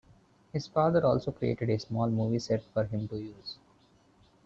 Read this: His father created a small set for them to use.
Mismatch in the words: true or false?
true